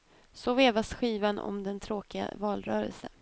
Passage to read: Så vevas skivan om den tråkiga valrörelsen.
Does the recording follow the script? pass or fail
pass